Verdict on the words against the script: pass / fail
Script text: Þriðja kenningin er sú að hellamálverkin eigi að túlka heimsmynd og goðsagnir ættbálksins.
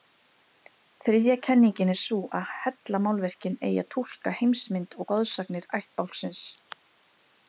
pass